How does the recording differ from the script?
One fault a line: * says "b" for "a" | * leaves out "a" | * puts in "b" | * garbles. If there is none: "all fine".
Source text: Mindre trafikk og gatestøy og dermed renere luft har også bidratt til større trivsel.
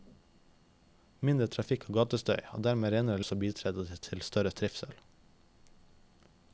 * leaves out "luft har"